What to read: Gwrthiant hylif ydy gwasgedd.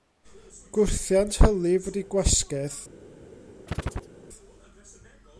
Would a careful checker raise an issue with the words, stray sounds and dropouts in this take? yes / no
yes